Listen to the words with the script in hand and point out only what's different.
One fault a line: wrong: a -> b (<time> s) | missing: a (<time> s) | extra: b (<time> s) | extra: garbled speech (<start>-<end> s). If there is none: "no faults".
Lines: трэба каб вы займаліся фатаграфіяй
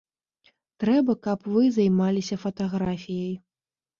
no faults